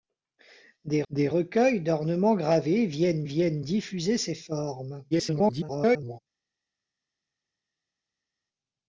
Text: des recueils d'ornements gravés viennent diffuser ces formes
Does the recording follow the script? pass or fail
fail